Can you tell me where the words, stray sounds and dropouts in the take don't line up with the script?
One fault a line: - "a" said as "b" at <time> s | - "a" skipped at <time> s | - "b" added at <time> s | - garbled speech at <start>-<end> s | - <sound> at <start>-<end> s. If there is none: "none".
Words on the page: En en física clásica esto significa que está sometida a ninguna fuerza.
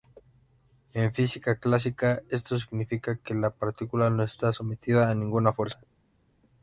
- "en" skipped at 1.1 s
- "la partícula no" added at 3.4 s